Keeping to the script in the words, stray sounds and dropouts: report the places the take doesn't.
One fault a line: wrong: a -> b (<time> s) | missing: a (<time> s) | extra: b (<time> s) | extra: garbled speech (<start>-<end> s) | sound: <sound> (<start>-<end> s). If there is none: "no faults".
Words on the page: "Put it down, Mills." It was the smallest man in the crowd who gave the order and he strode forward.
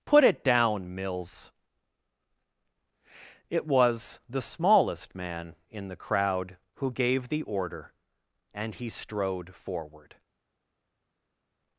no faults